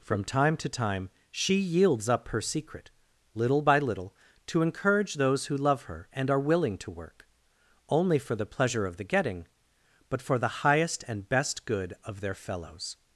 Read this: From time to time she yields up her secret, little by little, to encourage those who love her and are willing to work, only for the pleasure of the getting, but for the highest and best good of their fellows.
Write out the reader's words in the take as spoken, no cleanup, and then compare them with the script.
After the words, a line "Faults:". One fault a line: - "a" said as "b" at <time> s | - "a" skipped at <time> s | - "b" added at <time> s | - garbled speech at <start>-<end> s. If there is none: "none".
From time to time she yields up her secret, little by little, to encourage those who love her and are willing to work, only for the pleasure of the getting, but for the highest and best good of their fellows.
Faults:
none